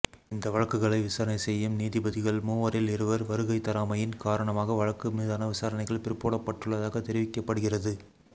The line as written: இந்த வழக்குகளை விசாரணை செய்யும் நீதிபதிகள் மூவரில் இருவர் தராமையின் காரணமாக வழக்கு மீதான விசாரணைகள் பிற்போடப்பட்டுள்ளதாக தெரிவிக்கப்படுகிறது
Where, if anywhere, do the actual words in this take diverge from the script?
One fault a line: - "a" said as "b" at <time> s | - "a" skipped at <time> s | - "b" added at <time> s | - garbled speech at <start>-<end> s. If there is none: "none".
- "வருகை" added at 3.2 s